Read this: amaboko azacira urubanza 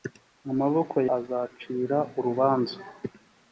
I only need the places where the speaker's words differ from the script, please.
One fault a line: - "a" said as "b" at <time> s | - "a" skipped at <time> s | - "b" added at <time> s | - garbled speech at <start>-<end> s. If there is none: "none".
none